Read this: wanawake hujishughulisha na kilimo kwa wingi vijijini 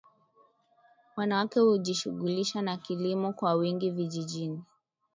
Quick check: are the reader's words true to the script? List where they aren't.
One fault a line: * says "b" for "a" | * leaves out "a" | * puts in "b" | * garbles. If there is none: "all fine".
all fine